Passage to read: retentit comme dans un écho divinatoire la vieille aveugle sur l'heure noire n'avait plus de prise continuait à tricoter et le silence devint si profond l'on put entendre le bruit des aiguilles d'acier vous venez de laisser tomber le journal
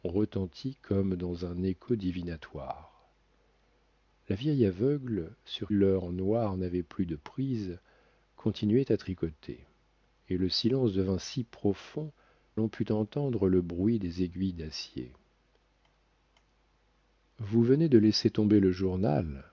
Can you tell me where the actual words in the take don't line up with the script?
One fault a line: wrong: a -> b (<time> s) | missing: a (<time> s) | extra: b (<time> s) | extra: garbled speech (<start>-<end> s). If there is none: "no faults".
no faults